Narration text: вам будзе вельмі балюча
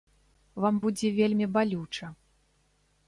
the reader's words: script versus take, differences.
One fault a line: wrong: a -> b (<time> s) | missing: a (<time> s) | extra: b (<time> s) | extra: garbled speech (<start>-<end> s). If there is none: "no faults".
no faults